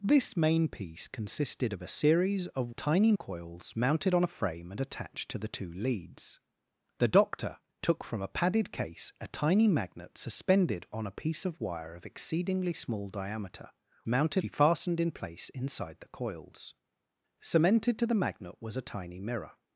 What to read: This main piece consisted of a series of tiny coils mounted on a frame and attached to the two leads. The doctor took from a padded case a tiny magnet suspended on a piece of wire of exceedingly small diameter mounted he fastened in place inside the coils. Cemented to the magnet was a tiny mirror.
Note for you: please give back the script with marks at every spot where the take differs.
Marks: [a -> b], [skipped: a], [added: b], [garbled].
This main piece consisted of a series of tiny coils mounted on a frame and attached to the two leads. The doctor took from a padded case a tiny magnet suspended on a piece of wire of exceedingly small diameter mounted he fastened in place inside the coils. Cemented to the magnet was a tiny mirror.